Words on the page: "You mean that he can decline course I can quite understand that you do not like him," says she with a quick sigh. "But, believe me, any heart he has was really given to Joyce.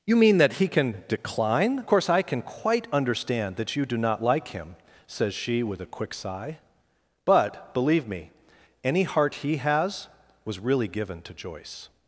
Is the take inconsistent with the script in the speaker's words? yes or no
no